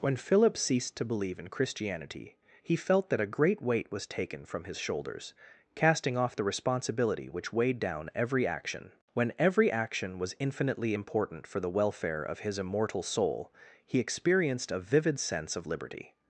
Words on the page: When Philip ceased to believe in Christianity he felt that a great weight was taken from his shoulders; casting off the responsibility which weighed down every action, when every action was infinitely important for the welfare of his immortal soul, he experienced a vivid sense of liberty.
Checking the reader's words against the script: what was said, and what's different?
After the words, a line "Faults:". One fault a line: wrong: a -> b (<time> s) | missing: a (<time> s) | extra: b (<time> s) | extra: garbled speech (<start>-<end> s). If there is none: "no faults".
When Philip ceased to believe in Christianity he felt that a great weight was taken from his shoulders; casting off the responsibility which weighed down every action, when every action was infinitely important for the welfare of his immortal soul, he experienced a vivid sense of liberty.
Faults:
no faults